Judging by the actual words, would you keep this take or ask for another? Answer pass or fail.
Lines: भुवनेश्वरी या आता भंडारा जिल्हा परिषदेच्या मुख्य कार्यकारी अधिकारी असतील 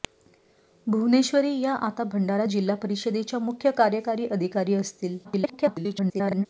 fail